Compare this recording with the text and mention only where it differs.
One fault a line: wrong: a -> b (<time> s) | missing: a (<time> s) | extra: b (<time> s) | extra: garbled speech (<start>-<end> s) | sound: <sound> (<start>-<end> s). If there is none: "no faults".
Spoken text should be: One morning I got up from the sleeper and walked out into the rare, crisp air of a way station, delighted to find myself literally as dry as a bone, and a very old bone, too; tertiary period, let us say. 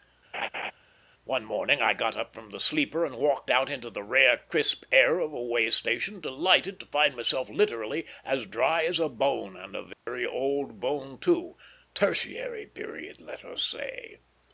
sound: laugh (0.3-0.7 s)
sound: dropout (9.9-10.1 s)